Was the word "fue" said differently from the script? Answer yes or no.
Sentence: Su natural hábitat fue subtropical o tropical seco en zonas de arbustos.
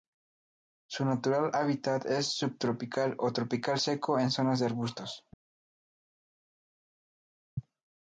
yes